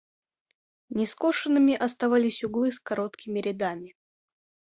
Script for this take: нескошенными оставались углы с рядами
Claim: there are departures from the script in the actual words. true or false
true